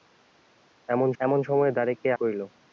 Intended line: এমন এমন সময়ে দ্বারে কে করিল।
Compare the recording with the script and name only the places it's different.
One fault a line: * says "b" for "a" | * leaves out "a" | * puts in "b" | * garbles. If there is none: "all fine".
all fine